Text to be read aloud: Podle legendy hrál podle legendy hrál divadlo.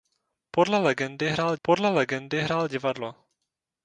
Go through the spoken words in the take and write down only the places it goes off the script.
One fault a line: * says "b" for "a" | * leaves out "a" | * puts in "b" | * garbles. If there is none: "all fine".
all fine